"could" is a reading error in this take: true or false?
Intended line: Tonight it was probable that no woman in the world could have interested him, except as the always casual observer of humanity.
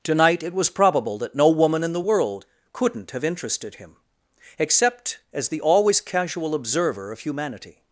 true